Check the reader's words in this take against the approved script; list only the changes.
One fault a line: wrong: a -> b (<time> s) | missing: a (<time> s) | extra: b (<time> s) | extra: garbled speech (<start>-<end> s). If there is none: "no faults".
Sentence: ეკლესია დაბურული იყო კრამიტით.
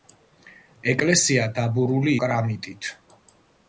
missing: იყო (2.1 s)